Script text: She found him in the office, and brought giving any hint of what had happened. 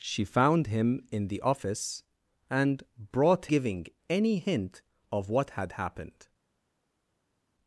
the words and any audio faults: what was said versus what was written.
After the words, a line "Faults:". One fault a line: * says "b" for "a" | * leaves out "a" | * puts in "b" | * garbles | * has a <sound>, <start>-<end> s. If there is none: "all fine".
She found him in the office, and brought giving any hint of what had happened.
Faults:
all fine